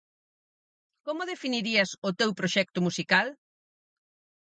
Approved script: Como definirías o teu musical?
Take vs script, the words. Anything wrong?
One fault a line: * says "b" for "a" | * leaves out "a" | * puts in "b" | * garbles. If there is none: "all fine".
* puts in "proxecto"